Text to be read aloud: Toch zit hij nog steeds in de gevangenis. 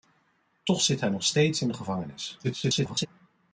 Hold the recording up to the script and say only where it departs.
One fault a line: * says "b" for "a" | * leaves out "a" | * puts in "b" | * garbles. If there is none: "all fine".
* garbles